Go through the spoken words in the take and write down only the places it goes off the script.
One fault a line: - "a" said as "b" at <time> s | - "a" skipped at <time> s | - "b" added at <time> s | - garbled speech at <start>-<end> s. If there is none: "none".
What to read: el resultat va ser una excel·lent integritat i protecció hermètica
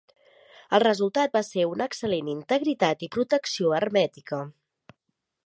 none